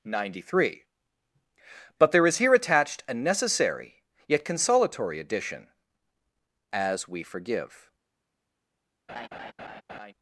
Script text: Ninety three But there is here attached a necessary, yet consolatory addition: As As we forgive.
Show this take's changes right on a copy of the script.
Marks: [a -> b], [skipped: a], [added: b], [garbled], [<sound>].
Ninety three But there is here attached a necessary, yet consolatory addition: As [skipped: As] we forgive. [laugh]